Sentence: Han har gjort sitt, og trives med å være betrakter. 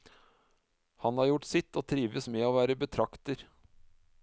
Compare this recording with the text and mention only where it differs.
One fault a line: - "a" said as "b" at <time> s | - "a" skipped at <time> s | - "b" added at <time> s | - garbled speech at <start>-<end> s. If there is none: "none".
none